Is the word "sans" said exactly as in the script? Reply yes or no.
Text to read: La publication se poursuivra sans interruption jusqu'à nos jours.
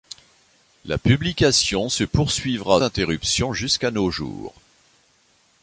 no